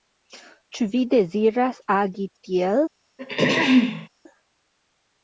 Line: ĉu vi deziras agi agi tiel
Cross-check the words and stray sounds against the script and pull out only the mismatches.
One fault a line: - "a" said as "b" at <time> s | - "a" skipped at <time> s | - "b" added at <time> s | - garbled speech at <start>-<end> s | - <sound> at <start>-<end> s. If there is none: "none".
- "agi" skipped at 2.3 s
- throat clearing at 3.2-4.1 s